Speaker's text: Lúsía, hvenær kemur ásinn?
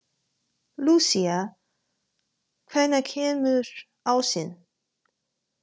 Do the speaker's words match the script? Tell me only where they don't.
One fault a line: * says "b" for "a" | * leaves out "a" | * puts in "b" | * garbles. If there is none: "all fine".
all fine